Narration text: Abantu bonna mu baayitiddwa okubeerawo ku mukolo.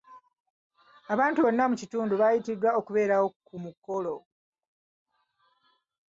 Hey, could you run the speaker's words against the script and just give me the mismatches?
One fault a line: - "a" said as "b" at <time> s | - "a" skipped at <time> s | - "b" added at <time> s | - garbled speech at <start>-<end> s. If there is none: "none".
- "kitundu" added at 1.8 s